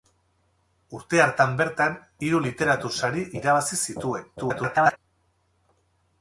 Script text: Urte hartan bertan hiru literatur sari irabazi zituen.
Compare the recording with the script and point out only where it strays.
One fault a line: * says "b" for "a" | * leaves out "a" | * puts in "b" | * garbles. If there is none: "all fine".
* garbles